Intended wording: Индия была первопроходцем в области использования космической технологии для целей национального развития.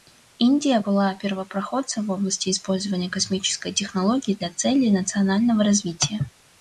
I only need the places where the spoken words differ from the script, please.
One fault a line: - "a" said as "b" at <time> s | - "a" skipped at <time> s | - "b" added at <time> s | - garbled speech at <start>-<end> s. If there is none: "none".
none